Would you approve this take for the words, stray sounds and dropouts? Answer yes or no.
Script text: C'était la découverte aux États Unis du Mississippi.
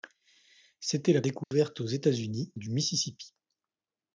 no